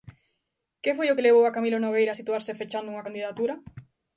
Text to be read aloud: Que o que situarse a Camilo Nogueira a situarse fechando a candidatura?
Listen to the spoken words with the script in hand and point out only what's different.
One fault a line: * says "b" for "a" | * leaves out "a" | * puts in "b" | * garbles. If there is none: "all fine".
* puts in "foi"
* says "levou" for "situarse"
* says "unha" for "a"